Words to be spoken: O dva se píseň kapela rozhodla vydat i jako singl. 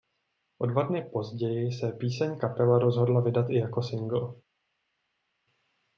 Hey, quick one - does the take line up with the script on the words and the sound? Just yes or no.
no